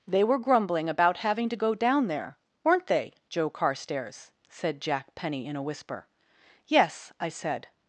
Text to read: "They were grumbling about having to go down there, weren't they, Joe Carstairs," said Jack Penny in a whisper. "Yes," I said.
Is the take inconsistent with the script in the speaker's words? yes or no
no